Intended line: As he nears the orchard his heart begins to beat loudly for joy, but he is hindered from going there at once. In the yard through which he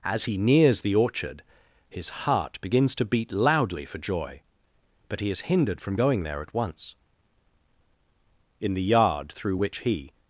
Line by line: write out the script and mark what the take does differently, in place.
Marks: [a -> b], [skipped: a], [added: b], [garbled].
As he nears the orchard his heart begins to beat loudly for joy, but he is hindered from going there at once. In the yard through which he